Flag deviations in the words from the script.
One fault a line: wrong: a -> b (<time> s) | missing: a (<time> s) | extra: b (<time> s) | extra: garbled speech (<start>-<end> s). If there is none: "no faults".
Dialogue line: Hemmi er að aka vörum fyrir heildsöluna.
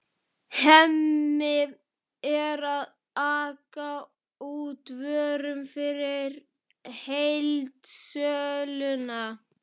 extra: út (4.5 s)